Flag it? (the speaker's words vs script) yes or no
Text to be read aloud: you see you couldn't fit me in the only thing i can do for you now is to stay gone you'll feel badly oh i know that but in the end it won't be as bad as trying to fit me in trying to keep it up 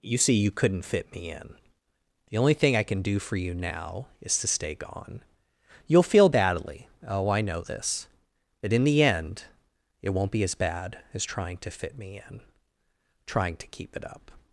yes